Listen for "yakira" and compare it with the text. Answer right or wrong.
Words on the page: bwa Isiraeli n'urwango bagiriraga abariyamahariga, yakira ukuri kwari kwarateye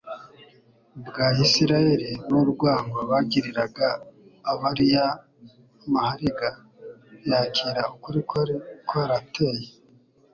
right